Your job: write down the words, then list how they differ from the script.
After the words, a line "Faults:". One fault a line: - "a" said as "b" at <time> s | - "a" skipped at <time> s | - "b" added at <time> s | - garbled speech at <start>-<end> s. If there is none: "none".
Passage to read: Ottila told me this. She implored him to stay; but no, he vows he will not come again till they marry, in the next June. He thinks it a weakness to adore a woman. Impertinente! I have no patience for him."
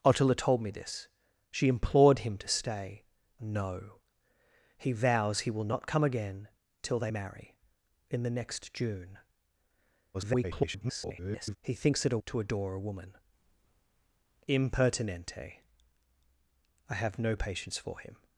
Ottila told me this. She implored him to stay; no, he vows he will not come again till they marry, in the next June. [garbled] He thinks it a to adore a woman. Impertinente! I have no patience for him."
Faults:
- "but" skipped at 3.0 s
- garbled speech at 10.1-11.6 s
- "weakness" skipped at 12.2 s